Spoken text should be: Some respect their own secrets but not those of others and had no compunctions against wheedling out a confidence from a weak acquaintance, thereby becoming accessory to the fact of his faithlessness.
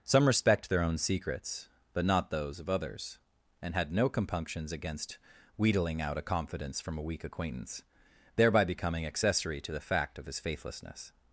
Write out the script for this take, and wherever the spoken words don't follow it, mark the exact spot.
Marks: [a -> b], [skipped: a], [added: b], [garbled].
Some respect their own secrets but not those of others and had no compunctions against wheedling out a confidence from a weak acquaintance, thereby becoming accessory to the fact of his faithlessness.